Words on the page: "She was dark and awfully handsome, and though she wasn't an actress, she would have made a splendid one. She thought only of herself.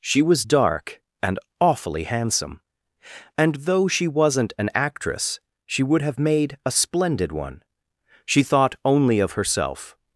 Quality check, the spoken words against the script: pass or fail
pass